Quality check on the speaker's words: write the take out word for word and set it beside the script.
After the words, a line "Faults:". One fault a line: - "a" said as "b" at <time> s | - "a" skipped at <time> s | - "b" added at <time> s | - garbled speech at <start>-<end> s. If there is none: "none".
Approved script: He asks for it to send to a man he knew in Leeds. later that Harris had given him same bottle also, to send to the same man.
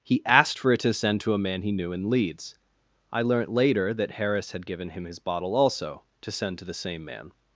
He asked for it to send to a man he knew in Leeds. I learnt later that Harris had given him his bottle also, to send to the same man.
Faults:
- "asks" said as "asked" at 0.2 s
- "I learnt" added at 3.1 s
- "same" said as "his" at 5.0 s